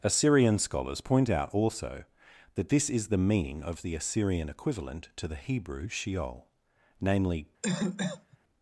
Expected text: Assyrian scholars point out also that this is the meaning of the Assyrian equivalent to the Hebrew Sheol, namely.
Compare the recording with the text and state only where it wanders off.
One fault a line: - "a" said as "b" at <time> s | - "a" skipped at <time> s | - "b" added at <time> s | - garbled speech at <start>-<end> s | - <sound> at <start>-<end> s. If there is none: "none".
- cough at 7.6-8.4 s